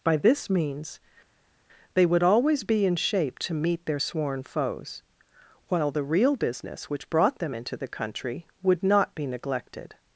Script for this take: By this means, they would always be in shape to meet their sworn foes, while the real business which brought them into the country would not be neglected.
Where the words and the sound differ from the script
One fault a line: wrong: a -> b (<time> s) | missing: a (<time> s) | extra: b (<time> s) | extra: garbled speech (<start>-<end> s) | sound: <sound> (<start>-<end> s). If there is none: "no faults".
no faults